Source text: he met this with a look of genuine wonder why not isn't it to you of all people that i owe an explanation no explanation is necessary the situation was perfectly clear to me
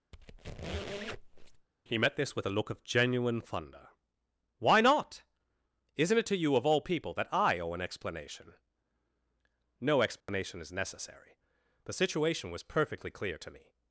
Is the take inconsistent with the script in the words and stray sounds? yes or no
yes